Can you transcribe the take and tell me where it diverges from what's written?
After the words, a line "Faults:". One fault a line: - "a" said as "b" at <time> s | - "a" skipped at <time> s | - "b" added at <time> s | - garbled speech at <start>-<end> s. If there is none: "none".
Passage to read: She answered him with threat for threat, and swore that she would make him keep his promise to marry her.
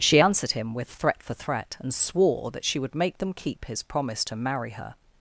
She answered him with threat for threat, and swore that she would make them keep his promise to marry her.
Faults:
- "him" said as "them" at 3.2 s